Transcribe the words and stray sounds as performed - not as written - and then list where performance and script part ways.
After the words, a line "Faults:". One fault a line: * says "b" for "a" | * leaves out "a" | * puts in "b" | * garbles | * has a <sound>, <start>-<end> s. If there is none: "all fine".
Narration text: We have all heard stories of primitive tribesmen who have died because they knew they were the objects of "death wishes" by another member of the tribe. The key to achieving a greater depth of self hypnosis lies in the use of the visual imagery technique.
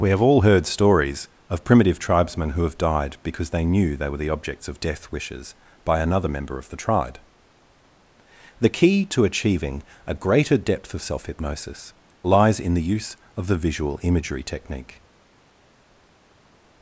We have all heard stories of primitive tribesmen who have died because they knew they were the objects of "death wishes" by another member of the tribe. The key to achieving a greater depth of self hypnosis lies in the use of the visual imagery technique.
Faults:
all fine